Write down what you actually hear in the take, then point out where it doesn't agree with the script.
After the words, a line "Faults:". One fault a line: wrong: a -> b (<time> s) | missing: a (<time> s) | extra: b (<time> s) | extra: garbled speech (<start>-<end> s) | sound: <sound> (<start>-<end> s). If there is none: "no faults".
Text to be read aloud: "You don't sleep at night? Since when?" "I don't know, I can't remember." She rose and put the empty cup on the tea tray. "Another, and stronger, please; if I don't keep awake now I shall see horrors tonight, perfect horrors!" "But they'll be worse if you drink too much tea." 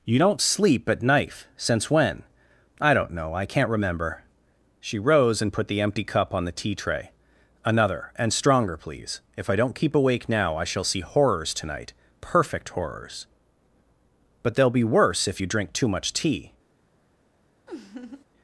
"You don't sleep at knife? Since when?" "I don't know, I can't remember." She rose and put the empty cup on the tea tray. "Another, and stronger, please; if I don't keep awake now I shall see horrors tonight, perfect horrors!" "But they'll be worse if you drink too much tea."
Faults:
wrong: night -> knife (1.0 s)
sound: laugh (17.7-18.2 s)